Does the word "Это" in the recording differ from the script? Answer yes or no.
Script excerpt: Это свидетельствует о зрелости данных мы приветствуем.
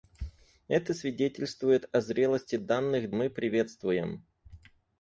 no